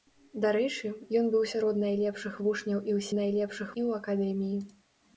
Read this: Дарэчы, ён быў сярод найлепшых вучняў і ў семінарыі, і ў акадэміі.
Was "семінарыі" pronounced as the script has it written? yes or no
no